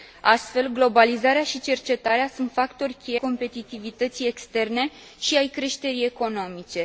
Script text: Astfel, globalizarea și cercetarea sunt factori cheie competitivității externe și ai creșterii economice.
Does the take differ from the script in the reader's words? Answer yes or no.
no